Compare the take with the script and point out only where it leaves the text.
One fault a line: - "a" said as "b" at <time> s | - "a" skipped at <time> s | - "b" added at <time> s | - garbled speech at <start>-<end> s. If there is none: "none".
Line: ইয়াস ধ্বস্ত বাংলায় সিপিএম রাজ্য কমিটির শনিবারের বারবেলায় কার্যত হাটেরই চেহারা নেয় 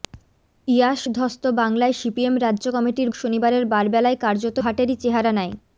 none